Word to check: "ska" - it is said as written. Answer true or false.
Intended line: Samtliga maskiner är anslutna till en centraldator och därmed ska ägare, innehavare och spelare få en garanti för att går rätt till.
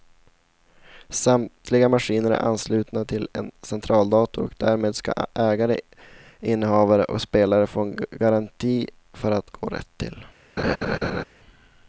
true